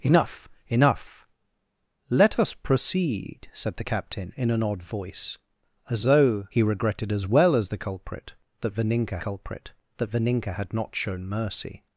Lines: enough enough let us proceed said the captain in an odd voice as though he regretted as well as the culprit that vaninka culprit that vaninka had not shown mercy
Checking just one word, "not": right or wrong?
right